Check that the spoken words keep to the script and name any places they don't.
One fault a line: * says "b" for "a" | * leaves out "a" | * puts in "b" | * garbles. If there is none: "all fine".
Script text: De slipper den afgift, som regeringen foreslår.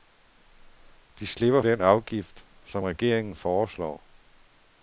all fine